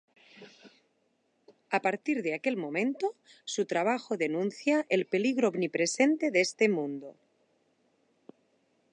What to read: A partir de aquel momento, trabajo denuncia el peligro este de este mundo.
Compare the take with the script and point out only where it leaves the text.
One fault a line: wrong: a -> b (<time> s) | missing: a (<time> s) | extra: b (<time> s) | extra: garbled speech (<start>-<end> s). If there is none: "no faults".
extra: su (3.5 s)
wrong: este -> omnipresente (5.5 s)